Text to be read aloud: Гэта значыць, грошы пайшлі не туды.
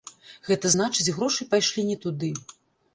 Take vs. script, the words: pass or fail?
pass